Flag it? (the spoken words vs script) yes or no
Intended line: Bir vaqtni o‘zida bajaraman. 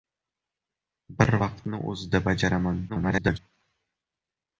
yes